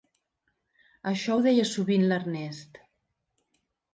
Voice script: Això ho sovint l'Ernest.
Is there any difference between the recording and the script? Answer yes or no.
yes